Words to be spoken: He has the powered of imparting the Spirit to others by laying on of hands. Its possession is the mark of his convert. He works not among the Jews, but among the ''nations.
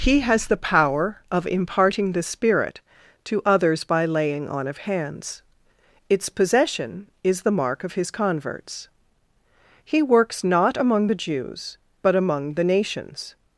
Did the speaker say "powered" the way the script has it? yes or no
no